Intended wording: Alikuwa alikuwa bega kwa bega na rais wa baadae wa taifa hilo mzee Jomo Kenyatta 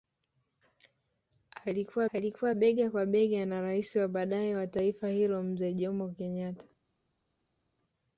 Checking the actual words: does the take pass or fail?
pass